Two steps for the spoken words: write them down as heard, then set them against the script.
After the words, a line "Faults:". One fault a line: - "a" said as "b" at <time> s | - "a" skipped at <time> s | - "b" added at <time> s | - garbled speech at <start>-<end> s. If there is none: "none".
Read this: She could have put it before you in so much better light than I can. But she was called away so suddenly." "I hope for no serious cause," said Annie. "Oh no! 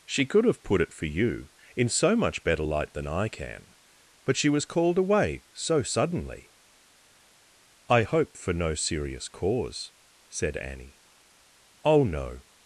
She could have put it for you in so much better light than I can. But she was called away so suddenly." "I hope for no serious cause," said Annie. "Oh no!
Faults:
- "before" said as "for" at 0.9 s